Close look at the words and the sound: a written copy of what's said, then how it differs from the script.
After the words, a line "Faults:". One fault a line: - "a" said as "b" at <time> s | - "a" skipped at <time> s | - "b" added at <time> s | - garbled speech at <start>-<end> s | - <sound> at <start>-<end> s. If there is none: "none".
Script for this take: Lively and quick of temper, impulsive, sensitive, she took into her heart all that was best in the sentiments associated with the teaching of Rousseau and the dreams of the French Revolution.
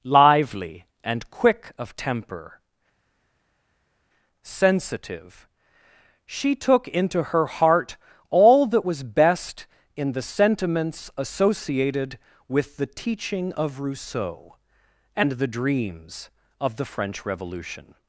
Lively and quick of temper, sensitive, she took into her heart all that was best in the sentiments associated with the teaching of Rousseau and the dreams of the French Revolution.
Faults:
- "impulsive" skipped at 2.6 s